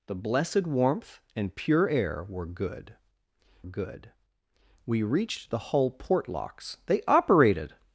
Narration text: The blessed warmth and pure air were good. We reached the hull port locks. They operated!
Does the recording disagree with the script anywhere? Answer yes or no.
yes